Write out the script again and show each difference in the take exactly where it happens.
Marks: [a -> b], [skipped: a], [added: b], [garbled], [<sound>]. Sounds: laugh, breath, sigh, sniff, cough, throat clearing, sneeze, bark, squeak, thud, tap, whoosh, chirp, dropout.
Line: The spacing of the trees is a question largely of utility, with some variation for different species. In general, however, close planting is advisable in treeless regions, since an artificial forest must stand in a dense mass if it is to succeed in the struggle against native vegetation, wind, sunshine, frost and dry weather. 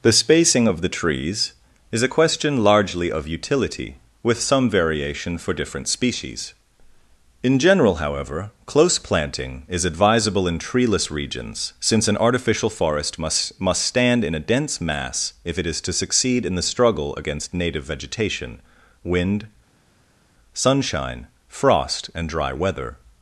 The spacing of the trees is a question largely of utility, with some variation for different species. In general, however, close planting is advisable in treeless regions, since an artificial forest must [added: must] stand in a dense mass if it is to succeed in the struggle against native vegetation, wind, sunshine, frost and dry weather.